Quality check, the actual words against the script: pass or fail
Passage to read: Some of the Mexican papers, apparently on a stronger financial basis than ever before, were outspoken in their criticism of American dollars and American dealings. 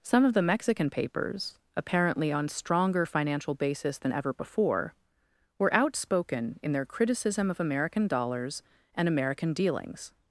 fail